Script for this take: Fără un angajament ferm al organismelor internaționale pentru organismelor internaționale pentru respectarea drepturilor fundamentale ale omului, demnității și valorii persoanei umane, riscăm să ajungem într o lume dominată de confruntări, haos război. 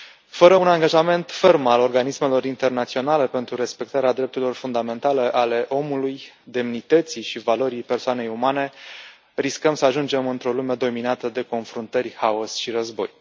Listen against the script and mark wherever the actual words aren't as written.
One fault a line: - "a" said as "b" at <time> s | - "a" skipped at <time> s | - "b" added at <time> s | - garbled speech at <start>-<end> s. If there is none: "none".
- "organismelor internaționale pentru" skipped at 3.5 s
- "și" added at 12.6 s